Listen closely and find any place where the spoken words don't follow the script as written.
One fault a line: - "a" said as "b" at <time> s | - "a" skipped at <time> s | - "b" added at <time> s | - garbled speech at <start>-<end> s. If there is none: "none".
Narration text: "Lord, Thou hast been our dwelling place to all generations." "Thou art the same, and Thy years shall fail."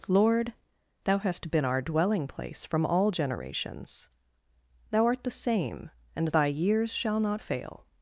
- "to" said as "from" at 2.6 s
- "not" added at 7.2 s